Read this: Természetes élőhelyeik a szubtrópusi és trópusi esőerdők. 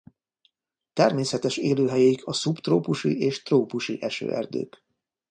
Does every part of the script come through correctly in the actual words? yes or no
yes